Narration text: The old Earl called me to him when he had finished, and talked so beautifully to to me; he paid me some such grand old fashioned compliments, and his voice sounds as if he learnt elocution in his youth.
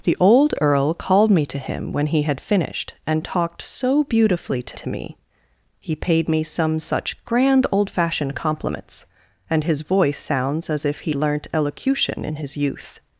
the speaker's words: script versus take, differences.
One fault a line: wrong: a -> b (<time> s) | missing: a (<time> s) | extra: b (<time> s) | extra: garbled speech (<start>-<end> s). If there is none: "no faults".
no faults